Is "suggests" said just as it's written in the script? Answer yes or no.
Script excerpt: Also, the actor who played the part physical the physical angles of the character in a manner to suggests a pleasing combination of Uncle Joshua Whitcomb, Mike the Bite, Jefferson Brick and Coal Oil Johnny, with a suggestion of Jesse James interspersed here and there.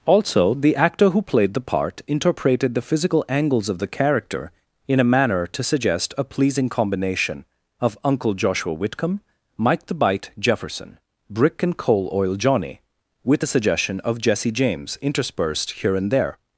no